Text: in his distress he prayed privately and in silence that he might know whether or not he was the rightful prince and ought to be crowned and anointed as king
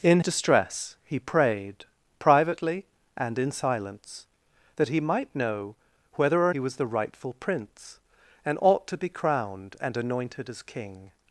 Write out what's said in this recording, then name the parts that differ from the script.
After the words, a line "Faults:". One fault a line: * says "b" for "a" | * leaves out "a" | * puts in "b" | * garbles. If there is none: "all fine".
in distress he prayed privately and in silence that he might know whether or he was the rightful prince and ought to be crowned and anointed as king
Faults:
* leaves out "his"
* leaves out "not"